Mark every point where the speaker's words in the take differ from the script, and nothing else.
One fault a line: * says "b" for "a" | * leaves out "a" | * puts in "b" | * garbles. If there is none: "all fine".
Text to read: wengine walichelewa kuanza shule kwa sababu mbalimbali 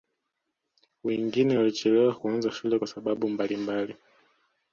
all fine